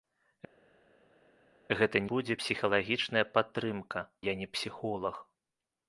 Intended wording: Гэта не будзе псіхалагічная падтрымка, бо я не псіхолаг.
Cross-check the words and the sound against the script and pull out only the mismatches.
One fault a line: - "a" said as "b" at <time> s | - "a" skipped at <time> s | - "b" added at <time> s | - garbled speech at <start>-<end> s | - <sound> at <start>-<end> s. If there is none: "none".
- "не" skipped at 2.0 s
- "бо" skipped at 4.1 s